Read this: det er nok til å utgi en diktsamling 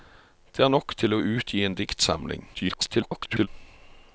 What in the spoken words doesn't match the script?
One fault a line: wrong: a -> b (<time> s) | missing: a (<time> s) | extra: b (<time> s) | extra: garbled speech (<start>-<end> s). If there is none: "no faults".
extra: garbled speech (2.5-3.5 s)